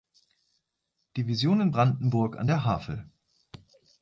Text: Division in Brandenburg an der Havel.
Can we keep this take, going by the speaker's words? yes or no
yes